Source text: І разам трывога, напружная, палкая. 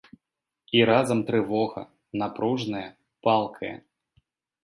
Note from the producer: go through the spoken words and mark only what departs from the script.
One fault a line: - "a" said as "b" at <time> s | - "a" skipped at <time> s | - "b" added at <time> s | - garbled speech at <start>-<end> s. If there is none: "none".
none